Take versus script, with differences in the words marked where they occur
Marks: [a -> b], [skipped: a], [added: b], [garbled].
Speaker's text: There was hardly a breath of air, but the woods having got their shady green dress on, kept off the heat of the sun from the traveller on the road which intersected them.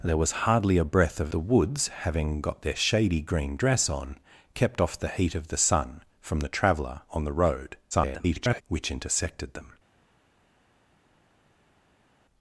There was hardly a breath of [skipped: air, but] the woods having got their shady green dress on, kept off the heat of the sun from the traveller on the road [garbled] which intersected them.